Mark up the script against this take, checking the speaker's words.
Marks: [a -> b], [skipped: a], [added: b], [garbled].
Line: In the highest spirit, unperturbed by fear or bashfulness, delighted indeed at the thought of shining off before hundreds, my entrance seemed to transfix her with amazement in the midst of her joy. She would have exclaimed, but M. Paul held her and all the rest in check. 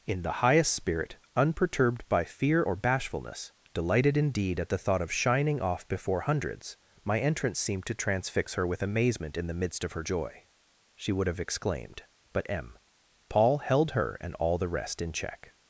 In the highest spirit, unperturbed by fear or bashfulness, delighted indeed at the thought of shining off before hundreds, my entrance seemed to transfix her with amazement in the midst of her joy. She would have exclaimed, but M. Paul held her and all the rest in check.